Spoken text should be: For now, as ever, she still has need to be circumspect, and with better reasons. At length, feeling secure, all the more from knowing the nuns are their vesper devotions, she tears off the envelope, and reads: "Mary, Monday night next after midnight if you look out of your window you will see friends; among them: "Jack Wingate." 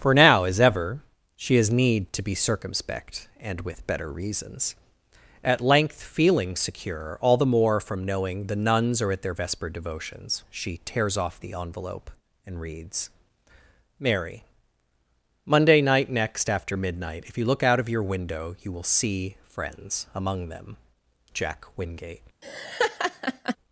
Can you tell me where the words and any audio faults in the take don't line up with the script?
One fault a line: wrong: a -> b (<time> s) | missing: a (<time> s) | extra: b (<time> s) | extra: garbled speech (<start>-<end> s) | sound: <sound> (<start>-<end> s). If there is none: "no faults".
missing: still (1.6 s)
extra: at (9.1 s)
sound: laugh (22.4-23.6 s)